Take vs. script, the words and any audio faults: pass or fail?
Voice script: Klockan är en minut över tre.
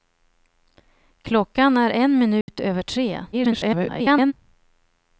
fail